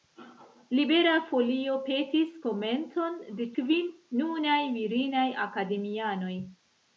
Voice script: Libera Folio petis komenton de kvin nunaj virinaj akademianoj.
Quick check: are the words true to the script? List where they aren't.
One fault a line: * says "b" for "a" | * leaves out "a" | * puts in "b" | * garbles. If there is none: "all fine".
all fine